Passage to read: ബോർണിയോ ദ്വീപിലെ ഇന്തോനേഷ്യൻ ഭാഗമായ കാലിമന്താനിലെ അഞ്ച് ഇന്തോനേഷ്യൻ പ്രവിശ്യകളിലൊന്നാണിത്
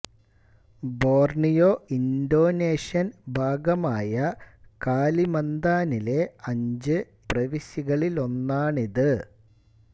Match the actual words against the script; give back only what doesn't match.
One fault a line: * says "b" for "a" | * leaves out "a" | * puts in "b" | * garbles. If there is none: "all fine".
* leaves out "ദ്വീപിലെ"
* leaves out "ഇന്തോനേഷ്യൻ"